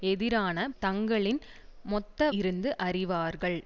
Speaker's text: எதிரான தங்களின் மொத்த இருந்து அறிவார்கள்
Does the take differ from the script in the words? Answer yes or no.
no